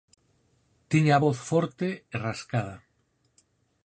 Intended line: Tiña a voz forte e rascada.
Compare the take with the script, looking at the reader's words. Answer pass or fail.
pass